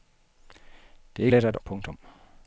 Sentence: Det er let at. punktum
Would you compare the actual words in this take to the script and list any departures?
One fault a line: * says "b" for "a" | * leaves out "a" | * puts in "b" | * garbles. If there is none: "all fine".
all fine